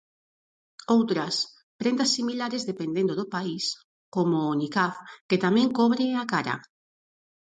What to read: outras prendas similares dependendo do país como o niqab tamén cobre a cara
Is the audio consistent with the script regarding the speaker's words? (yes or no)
no